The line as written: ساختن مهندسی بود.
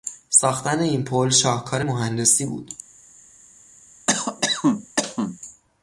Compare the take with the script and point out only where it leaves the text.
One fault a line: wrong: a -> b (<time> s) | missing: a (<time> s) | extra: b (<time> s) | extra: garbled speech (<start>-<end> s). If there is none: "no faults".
extra: این پل شاهکار (0.8 s)